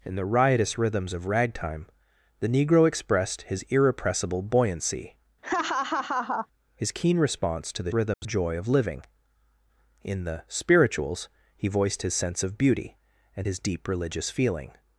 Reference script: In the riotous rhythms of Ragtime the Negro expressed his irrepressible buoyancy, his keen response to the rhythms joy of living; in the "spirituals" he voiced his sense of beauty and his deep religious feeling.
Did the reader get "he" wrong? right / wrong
right